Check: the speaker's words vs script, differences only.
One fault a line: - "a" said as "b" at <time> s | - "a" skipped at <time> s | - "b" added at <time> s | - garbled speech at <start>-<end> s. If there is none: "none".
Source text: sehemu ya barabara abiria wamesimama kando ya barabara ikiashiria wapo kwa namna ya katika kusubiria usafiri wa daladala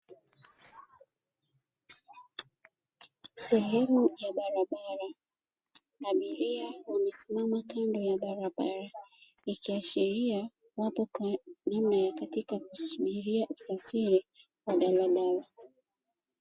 none